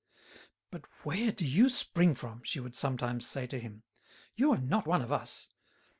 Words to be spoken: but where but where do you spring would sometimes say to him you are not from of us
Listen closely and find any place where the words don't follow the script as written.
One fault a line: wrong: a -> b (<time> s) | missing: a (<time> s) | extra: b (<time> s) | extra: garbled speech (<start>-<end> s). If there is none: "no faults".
missing: but where (1.3 s)
extra: from she (2.1 s)
wrong: from -> one (4.9 s)